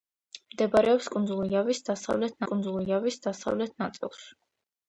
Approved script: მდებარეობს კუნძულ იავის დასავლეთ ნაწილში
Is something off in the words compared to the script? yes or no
yes